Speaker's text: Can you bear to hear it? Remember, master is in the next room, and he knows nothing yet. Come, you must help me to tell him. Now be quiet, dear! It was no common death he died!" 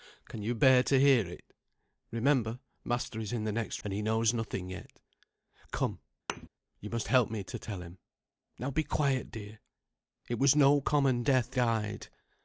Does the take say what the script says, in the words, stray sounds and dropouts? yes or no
no